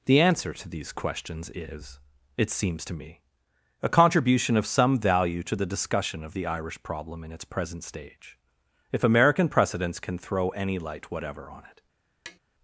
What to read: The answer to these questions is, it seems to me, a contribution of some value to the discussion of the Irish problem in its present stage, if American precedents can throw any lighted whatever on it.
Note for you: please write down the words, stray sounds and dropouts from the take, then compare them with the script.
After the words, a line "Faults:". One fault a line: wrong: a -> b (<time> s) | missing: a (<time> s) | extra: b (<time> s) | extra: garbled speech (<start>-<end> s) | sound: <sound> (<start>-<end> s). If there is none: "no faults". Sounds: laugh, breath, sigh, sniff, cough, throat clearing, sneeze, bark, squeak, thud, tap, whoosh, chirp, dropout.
The answer to these questions is, it seems to me, a contribution of some value to the discussion of the Irish problem in its present stage, if American precedents can throw any light whatever on it.
Faults:
wrong: lighted -> light (10.8 s)
sound: tap (12.3-12.4 s)